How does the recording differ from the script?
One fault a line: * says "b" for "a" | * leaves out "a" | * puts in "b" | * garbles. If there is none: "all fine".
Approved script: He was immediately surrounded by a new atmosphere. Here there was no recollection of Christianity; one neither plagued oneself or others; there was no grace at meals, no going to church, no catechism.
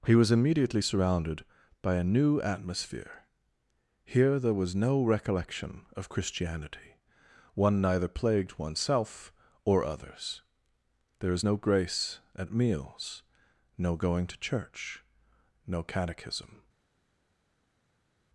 * says "is" for "was"